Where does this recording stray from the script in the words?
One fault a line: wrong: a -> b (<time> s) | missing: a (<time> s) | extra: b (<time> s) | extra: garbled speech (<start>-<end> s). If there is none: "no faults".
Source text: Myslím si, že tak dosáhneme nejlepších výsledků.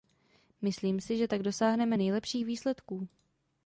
no faults